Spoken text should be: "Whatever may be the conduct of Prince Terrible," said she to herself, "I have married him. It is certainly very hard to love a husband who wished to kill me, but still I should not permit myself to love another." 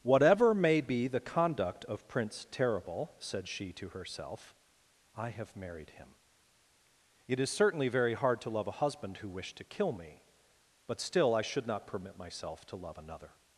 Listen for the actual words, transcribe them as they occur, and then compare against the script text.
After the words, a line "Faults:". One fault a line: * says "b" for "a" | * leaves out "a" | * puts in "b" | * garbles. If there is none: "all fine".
"Whatever may be the conduct of Prince Terrible," said she to herself, "I have married him. It is certainly very hard to love a husband who wished to kill me, but still I should not permit myself to love another."
Faults:
all fine